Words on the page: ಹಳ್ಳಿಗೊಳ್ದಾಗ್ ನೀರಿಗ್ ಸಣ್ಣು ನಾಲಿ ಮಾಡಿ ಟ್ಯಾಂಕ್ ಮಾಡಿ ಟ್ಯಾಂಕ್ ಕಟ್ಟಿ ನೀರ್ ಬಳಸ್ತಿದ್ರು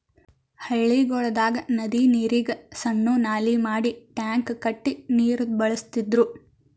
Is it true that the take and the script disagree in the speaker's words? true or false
true